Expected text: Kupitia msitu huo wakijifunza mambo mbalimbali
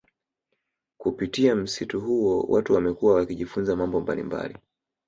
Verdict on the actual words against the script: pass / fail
fail